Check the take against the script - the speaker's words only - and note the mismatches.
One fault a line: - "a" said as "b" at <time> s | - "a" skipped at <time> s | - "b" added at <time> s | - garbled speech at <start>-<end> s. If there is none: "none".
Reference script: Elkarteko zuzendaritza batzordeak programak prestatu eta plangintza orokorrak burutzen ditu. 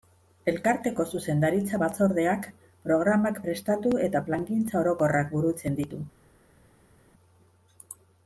none